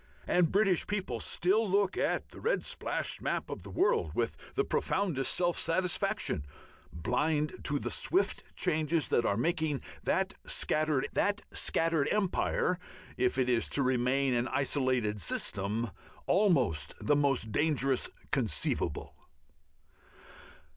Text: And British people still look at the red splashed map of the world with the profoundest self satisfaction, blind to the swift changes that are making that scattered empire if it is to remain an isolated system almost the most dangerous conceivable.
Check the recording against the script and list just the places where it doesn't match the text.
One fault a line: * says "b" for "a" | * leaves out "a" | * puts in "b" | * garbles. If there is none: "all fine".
* puts in "that scattered"